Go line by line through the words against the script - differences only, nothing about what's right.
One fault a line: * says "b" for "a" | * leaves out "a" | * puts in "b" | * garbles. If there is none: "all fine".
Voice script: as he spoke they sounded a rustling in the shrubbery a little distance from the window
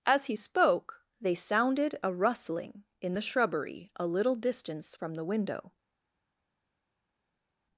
all fine